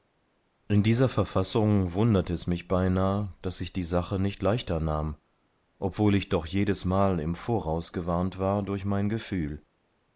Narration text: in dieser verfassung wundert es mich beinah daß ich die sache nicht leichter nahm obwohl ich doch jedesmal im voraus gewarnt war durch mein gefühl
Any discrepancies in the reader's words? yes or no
no